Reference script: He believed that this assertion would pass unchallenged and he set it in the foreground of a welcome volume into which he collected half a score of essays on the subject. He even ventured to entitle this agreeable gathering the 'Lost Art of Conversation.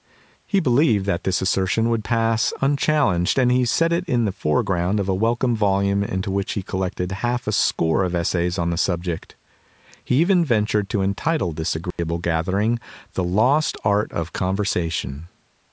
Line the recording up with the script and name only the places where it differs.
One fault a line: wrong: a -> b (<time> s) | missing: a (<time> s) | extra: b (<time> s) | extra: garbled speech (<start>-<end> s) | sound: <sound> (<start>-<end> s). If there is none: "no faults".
sound: dropout (11.9-12.0 s)